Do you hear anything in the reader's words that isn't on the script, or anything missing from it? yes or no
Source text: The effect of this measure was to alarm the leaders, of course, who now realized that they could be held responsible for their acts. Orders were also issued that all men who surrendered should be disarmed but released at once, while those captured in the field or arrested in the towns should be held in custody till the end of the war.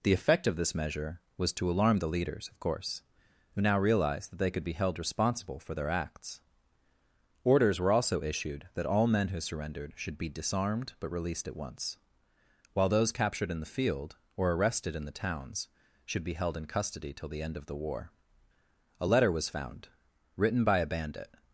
yes